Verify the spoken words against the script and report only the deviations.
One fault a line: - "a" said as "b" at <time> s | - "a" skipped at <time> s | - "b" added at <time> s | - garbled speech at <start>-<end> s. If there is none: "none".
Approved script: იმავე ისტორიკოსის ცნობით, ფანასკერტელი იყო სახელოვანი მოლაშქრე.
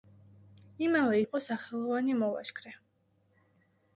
- "ისტორიკოსის ცნობით ფანასკერტელი" skipped at 1.2 s